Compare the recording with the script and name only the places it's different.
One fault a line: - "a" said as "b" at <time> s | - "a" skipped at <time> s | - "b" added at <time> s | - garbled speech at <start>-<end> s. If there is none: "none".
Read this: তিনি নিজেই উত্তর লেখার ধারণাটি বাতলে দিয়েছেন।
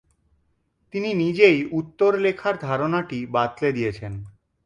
none